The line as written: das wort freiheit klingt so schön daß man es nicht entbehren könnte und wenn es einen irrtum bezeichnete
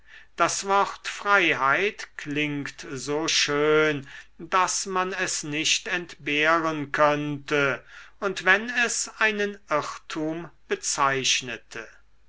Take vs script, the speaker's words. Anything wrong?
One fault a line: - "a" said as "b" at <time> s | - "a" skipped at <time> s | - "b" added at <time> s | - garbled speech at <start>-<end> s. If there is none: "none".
none